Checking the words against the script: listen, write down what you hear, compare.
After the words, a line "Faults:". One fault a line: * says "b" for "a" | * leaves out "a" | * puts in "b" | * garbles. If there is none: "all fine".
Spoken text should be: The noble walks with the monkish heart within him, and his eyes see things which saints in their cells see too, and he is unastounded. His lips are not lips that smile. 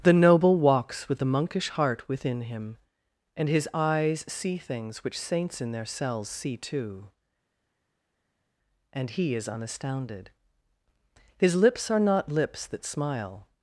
The noble walks with the monkish heart within him, and his eyes see things which saints in their cells see too, and he is unastounded. His lips are not lips that smile.
Faults:
all fine